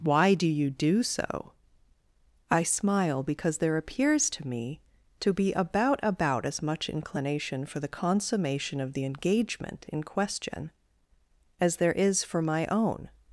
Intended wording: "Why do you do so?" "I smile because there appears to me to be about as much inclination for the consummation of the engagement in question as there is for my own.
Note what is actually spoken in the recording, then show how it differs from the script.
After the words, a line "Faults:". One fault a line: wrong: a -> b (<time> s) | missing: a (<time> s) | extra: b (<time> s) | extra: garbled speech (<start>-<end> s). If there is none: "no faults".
"Why do you do so?" "I smile because there appears to me to be about about as much inclination for the consummation of the engagement in question as there is for my own.
Faults:
extra: about (6.0 s)